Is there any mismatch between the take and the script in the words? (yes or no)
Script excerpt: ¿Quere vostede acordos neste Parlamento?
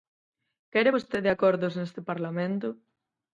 no